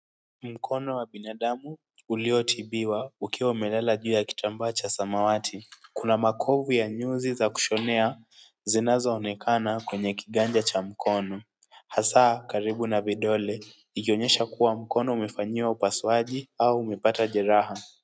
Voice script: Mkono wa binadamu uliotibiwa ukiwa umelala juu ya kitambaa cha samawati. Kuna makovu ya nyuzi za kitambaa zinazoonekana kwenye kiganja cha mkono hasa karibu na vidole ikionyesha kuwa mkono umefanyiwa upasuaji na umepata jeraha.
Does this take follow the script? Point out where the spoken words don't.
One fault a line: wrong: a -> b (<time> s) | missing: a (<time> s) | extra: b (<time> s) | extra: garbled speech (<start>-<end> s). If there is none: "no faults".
wrong: kitambaa -> kushonea (7.5 s)
wrong: na -> au (16.6 s)